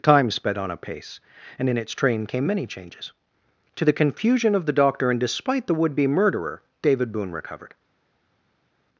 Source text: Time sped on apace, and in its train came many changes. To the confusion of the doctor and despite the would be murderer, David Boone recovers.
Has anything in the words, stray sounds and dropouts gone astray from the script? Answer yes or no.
yes